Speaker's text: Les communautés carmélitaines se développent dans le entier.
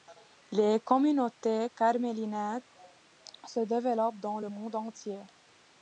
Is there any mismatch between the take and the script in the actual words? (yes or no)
yes